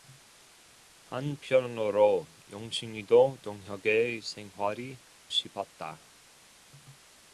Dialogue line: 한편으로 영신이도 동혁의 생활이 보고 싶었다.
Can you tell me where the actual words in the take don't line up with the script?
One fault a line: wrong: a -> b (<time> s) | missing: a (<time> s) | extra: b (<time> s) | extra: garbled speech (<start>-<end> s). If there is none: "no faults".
missing: 보고 (5.0 s)